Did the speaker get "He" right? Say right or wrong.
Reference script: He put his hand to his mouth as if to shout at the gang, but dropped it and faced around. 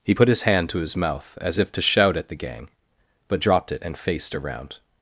right